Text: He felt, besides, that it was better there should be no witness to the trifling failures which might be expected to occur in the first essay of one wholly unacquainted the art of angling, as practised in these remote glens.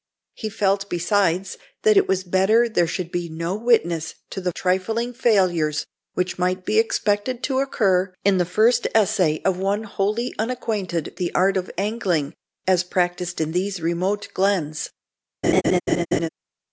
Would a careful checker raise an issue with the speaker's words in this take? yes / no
no